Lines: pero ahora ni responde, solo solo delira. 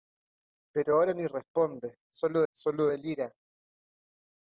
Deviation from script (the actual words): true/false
false